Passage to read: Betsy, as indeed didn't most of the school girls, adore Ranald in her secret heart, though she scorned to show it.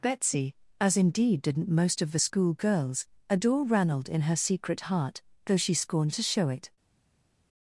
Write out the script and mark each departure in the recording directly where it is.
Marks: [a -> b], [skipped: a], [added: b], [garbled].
Betsy, as indeed didn't most of the school girls, adore Ranald in her secret heart, though she scorned to show it.